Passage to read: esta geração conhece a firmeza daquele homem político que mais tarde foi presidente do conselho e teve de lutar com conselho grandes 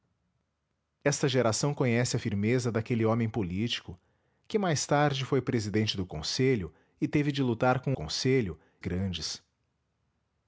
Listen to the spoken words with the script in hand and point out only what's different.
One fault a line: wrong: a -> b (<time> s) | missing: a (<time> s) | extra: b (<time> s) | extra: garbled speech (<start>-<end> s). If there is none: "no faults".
no faults